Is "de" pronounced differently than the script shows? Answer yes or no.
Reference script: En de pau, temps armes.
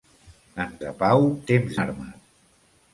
no